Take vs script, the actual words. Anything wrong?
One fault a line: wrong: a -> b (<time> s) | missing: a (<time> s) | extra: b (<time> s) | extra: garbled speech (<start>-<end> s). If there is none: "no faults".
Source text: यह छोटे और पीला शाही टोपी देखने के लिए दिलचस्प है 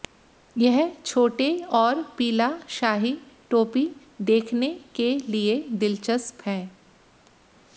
no faults